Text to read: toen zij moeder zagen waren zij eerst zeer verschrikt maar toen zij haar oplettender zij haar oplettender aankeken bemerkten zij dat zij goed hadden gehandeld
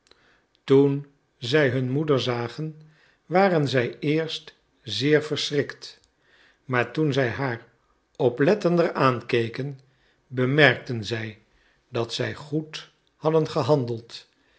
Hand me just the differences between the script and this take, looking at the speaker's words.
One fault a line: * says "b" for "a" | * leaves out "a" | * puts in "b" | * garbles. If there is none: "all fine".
* puts in "hun"
* leaves out "zij haar oplettender"